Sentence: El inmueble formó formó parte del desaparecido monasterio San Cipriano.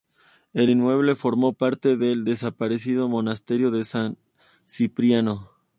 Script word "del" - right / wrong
right